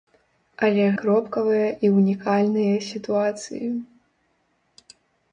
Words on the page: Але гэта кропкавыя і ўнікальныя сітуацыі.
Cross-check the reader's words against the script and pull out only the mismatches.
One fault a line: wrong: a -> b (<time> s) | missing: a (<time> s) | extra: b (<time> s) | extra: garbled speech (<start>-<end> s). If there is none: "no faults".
missing: гэта (0.8 s)